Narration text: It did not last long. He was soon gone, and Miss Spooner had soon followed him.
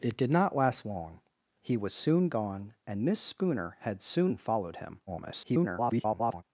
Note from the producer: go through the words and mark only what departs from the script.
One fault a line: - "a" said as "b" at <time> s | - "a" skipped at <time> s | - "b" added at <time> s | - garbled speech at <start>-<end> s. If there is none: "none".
- garbled speech at 5.1-6.4 s